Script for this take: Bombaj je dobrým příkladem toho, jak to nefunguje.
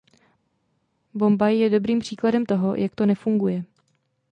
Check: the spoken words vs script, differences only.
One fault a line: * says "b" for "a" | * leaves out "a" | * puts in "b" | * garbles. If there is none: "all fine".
all fine